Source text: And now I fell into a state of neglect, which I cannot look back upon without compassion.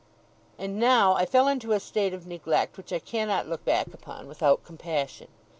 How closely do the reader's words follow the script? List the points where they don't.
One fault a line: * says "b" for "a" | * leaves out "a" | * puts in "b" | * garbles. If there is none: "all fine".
all fine